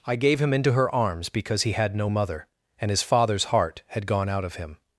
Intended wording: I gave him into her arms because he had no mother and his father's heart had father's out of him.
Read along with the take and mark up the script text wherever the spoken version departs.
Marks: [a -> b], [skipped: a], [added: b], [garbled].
I gave him into her arms because he had no mother and his father's heart had [father's -> gone] out of him.